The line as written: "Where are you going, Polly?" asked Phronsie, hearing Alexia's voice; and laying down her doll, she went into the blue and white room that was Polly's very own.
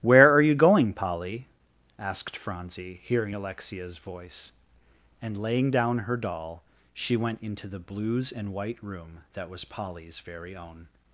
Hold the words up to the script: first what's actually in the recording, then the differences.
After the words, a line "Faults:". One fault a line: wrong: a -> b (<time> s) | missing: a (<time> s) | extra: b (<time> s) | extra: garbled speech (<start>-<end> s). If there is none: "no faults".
"Where are you going, Polly?" asked Phronsie, hearing Alexia's voice; and laying down her doll, she went into the blues and white room that was Polly's very own.
Faults:
wrong: blue -> blues (7.8 s)